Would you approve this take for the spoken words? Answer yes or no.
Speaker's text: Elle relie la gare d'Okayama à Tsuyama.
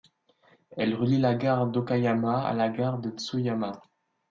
no